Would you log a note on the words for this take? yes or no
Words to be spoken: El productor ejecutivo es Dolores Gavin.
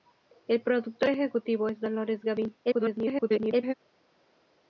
yes